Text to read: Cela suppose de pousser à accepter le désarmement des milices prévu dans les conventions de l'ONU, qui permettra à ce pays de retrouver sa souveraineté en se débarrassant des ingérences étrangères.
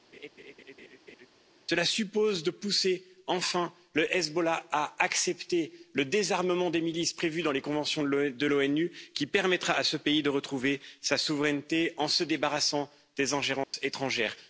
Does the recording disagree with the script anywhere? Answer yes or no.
yes